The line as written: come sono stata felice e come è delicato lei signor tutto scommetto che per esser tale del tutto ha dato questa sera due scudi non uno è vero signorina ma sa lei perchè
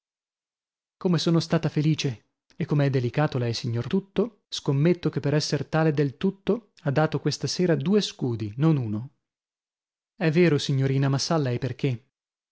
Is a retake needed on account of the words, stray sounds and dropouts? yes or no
no